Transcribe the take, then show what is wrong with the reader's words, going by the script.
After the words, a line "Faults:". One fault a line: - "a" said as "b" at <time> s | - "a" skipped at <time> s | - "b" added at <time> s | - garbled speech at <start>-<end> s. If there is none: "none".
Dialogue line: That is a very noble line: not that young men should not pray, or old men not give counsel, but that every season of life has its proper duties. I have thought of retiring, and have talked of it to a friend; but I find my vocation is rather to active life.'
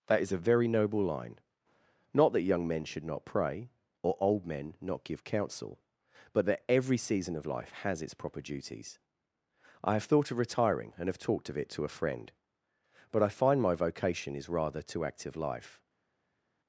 That is a very noble line: not that young men should not pray, or old men not give counsel, but that every season of life has its proper duties. I have thought of retiring, and have talked of it to a friend; but I find my vocation is rather to active life.'
Faults:
none